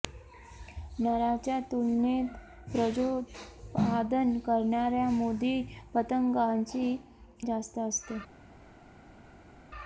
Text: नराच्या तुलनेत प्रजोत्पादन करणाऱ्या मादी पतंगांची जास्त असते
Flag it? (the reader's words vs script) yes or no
no